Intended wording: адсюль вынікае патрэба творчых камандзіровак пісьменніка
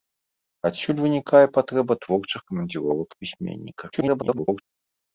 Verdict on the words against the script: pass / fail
fail